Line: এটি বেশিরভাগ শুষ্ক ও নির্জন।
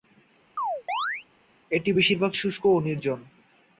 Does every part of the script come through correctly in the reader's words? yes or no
yes